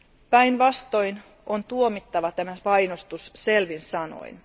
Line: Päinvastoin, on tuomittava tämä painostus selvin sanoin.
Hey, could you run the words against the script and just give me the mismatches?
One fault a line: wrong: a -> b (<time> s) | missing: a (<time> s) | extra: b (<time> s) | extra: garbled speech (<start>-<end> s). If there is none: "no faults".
no faults